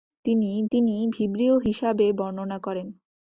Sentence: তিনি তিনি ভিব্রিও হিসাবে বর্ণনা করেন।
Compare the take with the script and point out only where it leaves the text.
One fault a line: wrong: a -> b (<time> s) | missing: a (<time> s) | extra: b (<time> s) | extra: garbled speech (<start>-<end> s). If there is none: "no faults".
no faults